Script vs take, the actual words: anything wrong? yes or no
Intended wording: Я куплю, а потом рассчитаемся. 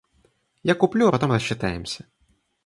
no